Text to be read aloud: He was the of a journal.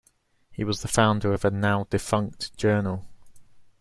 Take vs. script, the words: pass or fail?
fail